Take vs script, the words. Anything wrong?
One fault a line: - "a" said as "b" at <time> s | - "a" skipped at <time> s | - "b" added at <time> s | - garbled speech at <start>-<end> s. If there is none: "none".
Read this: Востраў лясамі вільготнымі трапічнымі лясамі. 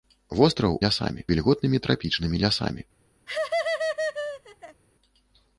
none